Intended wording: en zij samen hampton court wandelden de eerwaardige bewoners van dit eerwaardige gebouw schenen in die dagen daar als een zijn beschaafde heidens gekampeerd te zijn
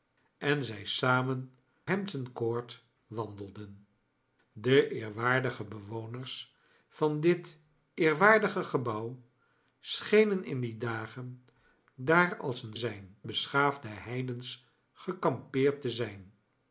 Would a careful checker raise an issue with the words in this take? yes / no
no